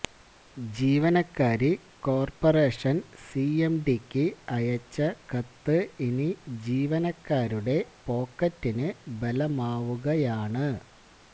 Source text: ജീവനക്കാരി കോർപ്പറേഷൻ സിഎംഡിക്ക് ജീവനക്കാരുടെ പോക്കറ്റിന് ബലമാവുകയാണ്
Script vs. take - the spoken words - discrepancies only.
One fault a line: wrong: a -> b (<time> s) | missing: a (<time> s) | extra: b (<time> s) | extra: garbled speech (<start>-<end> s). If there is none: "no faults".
extra: അയച്ച കത്ത് ഇനി (4.5 s)